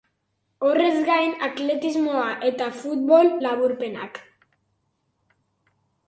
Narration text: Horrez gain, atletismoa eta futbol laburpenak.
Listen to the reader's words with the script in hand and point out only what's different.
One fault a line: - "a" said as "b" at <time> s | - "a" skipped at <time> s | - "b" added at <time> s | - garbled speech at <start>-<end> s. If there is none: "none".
none